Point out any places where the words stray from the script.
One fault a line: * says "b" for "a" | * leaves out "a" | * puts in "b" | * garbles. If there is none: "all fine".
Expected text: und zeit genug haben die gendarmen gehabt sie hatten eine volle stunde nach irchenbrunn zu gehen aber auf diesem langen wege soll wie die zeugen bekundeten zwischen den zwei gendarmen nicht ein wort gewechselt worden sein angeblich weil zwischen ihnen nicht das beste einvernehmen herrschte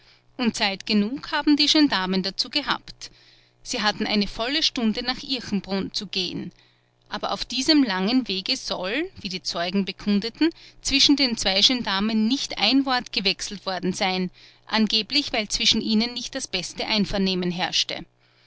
* puts in "dazu"